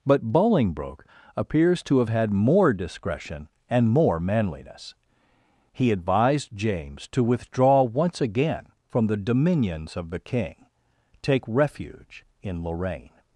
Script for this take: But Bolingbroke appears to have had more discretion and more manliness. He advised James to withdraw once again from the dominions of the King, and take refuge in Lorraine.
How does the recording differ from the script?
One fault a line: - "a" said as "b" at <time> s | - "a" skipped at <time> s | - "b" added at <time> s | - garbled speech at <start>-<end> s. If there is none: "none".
- "and" skipped at 10.6 s